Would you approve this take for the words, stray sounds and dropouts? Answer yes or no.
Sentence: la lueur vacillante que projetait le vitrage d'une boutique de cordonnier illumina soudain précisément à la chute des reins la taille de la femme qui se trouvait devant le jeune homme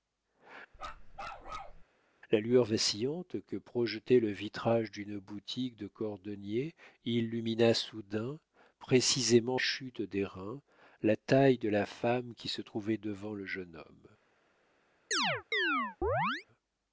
no